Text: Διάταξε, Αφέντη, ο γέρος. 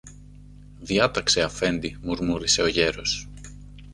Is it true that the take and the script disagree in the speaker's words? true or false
true